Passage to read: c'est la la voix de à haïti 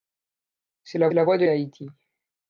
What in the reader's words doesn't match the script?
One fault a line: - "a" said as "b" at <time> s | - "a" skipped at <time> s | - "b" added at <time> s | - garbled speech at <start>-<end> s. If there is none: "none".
none